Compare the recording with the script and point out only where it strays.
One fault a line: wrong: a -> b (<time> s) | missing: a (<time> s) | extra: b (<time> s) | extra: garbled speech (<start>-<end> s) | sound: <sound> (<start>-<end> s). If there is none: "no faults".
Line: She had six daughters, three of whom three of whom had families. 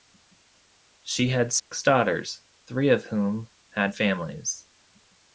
sound: dropout (1.6-1.7 s)
missing: three of whom (3.5 s)